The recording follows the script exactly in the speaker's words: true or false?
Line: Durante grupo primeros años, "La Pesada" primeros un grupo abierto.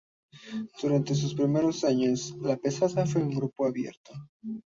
false